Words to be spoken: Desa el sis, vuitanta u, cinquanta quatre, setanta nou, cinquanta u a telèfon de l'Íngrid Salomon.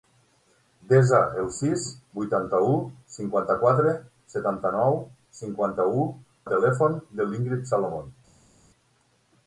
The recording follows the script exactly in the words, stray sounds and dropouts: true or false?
true